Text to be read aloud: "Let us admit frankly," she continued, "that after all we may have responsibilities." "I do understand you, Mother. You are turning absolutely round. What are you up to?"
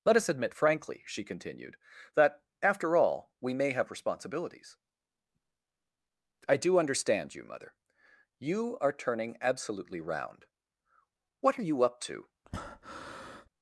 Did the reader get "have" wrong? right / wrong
right